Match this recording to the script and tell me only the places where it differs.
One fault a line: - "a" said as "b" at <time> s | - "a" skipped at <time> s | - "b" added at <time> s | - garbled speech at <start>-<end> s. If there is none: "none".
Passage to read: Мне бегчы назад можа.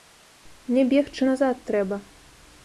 - "можа" said as "трэба" at 1.7 s